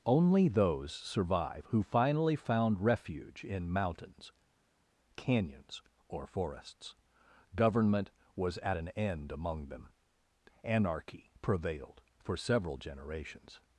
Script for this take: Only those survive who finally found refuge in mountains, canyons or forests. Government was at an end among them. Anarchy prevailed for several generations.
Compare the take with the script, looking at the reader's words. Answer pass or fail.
pass